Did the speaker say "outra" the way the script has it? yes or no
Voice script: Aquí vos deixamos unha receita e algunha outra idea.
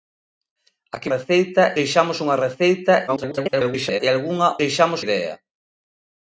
no